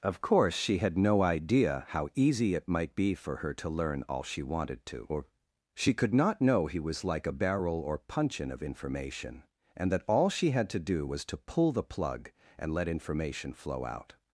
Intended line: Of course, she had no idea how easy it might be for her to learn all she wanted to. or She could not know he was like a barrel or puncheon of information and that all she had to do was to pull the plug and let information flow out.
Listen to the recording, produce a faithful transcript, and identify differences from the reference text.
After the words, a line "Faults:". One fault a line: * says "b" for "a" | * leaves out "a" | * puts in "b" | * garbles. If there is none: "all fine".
Of course, she had no idea how easy it might be for her to learn all she wanted to. or She could not know he was like a barrel or puncheon of information and that all she had to do was to pull the plug and let information flow out.
Faults:
all fine